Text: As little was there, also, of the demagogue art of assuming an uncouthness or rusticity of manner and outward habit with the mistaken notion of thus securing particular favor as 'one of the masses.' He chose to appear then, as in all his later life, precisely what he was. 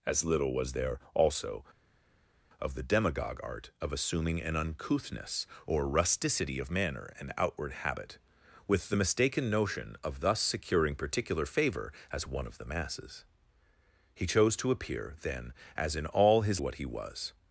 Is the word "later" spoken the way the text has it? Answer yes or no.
no